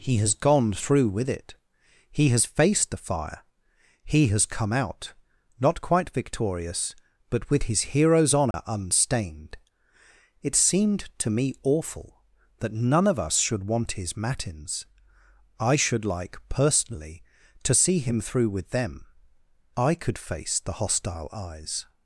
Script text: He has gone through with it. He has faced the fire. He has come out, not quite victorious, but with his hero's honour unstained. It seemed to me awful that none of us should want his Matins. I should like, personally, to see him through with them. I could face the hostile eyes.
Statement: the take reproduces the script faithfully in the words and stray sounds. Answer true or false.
false